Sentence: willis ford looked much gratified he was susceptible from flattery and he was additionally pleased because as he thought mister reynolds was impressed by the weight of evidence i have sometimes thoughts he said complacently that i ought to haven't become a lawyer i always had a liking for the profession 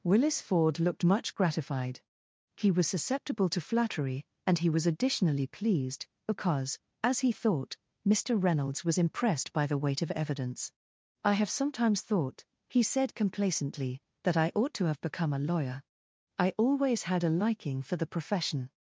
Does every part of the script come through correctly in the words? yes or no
no